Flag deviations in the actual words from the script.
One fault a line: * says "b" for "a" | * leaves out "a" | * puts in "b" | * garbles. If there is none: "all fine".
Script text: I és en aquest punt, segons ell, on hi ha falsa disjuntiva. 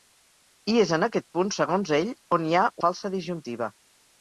all fine